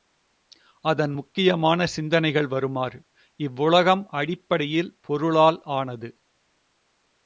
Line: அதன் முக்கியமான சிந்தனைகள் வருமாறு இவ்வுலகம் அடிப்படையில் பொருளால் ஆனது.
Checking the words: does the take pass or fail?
pass